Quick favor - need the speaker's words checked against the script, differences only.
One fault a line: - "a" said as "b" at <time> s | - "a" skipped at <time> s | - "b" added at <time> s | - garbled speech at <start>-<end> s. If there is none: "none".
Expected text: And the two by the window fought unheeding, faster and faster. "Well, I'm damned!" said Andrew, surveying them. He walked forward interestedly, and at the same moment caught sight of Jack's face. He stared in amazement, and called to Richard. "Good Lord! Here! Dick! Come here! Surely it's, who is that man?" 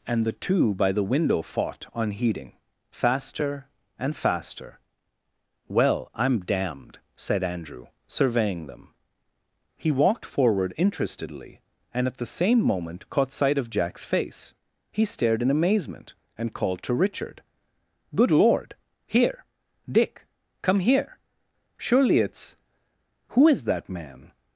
none